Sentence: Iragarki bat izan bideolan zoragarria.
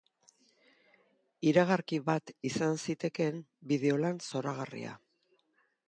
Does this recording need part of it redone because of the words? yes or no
yes